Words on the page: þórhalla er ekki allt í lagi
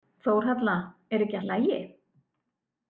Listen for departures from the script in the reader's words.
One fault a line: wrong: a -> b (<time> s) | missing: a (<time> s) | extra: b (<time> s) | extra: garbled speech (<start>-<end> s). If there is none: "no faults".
missing: allt (1.4 s)